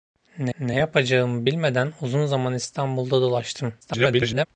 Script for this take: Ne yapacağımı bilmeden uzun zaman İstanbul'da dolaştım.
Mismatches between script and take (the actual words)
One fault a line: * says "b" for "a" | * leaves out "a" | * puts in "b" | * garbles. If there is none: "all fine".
* puts in "ne"
* garbles